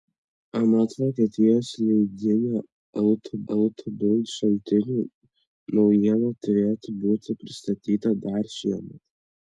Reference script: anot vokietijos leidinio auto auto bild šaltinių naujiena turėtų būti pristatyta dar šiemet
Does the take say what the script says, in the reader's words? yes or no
yes